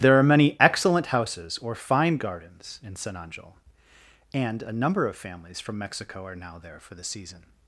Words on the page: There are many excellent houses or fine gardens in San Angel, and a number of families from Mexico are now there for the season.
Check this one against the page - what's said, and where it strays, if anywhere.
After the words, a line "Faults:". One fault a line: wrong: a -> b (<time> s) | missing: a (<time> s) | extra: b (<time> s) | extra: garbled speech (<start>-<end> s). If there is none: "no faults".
There are many excellent houses or fine gardens in San Angel, and a number of families from Mexico are now there for the season.
Faults:
no faults